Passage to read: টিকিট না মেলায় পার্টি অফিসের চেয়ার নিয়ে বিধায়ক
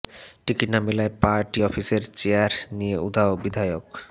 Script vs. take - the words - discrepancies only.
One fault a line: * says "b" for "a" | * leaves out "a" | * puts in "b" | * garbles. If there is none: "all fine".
* puts in "উধাও"